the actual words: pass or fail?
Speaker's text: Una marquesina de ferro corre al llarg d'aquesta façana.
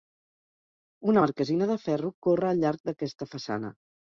pass